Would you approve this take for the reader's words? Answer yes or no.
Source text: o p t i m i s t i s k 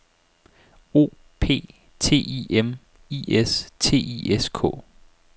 yes